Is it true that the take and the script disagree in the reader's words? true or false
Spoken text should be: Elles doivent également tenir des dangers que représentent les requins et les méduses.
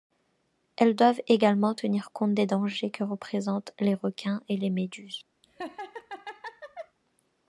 true